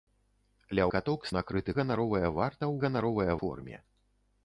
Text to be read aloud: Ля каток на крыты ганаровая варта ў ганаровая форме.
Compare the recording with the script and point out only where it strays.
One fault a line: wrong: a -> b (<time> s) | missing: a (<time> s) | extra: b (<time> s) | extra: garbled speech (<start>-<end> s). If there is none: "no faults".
no faults